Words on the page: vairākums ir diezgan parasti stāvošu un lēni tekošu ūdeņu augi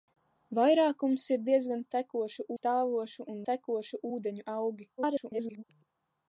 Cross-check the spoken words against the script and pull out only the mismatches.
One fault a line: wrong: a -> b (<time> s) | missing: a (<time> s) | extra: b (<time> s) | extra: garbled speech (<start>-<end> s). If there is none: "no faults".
wrong: parasti -> tekošu (2.0 s)
missing: lēni (3.4 s)
extra: garbled speech (5.0-5.6 s)